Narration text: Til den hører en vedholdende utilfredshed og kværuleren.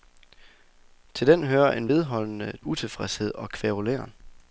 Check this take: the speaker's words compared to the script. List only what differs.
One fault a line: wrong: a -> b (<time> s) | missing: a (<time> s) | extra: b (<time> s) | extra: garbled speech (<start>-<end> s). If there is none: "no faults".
no faults